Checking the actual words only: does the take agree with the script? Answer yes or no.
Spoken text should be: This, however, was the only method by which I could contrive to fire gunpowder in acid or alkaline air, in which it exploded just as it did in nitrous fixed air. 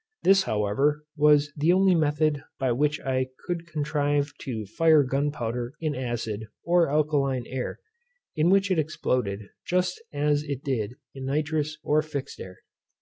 no